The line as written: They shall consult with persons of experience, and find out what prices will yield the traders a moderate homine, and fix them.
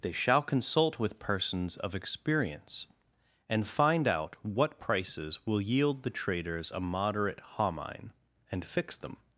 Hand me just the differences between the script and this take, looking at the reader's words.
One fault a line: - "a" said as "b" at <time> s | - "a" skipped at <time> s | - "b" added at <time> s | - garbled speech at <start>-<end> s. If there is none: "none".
none